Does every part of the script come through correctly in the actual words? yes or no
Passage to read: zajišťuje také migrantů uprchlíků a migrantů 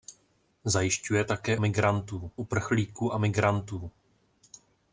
yes